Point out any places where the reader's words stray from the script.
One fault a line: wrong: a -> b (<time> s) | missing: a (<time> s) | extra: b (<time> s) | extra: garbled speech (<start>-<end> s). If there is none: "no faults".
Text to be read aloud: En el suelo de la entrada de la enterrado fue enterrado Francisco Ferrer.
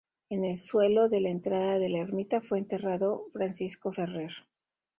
wrong: enterrado -> ermita (2.0 s)